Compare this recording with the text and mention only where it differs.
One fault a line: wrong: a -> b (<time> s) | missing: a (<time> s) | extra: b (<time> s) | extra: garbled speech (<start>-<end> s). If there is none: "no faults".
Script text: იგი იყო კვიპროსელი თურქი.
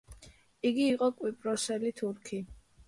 no faults